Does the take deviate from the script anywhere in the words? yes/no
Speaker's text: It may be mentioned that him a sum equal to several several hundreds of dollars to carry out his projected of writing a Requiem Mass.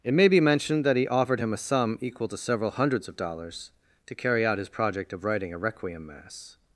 yes